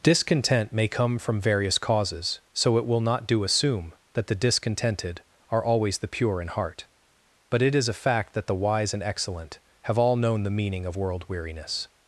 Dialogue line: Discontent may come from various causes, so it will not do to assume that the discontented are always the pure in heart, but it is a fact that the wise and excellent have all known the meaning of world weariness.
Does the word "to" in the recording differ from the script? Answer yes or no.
yes